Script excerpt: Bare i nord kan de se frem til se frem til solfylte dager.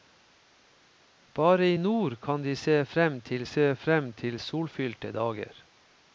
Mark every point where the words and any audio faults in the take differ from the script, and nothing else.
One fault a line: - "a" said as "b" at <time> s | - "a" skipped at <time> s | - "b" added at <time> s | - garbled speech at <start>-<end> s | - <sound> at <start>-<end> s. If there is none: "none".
none